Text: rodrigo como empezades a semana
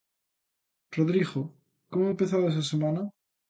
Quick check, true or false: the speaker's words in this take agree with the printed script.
true